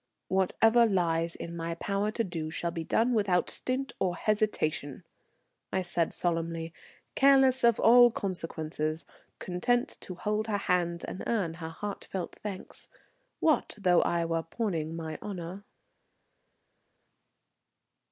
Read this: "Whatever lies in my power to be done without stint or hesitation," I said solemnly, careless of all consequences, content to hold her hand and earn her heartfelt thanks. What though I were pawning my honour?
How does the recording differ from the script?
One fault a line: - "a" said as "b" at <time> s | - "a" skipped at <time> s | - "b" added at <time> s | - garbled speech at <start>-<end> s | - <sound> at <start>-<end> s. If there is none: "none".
- "do shall" added at 2.2 s